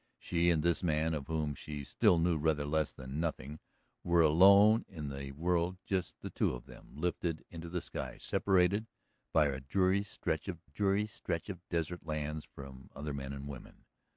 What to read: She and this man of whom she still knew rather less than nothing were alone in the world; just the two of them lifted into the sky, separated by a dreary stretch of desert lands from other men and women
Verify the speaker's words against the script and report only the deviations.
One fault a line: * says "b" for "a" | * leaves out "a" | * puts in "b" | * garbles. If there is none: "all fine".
* puts in "dreary stretch of"